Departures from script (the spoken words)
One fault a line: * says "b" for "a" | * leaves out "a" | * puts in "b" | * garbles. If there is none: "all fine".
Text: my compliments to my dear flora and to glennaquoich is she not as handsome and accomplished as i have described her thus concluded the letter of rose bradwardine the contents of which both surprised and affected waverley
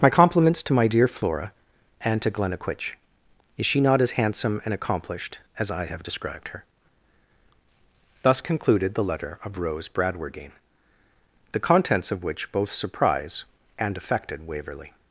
* says "surprise" for "surprised"